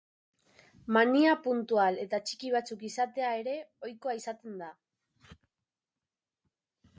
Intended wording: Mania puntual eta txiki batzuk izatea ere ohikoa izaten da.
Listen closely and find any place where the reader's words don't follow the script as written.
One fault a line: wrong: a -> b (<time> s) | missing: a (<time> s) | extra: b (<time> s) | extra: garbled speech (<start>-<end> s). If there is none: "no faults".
no faults